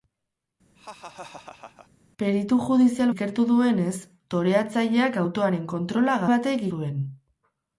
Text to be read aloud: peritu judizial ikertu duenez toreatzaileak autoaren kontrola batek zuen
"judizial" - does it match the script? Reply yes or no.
yes